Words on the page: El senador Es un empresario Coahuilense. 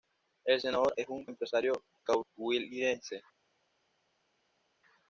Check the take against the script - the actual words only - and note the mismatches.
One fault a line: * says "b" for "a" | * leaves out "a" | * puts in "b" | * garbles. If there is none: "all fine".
all fine